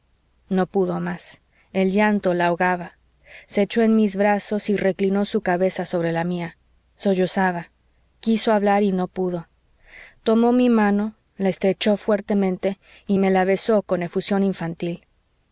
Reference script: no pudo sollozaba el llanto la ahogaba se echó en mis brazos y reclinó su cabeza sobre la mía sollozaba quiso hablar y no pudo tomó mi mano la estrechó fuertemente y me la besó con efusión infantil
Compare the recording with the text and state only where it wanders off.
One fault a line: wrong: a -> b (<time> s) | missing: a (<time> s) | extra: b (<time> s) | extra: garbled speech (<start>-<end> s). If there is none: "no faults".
wrong: sollozaba -> más (1.0 s)